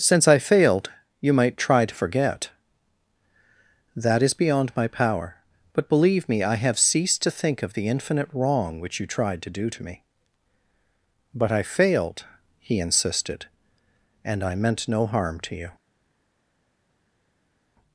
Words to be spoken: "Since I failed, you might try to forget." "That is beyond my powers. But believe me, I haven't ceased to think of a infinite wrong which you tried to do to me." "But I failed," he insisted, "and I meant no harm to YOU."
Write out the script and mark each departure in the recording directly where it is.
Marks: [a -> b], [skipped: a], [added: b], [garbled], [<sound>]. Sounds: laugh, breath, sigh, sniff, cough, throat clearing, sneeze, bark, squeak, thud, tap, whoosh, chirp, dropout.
"Since I failed, you might try to forget." "That is beyond my [powers. -> power] But believe me, I [haven't -> have] ceased to think of [a -> the] infinite wrong which you tried to do to me." "But I failed," he insisted, "and I meant no harm to YOU."